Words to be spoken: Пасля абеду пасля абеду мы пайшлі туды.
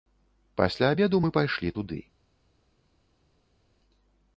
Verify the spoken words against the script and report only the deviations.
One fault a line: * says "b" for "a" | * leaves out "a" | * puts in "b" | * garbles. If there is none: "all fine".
* leaves out "пасля абеду"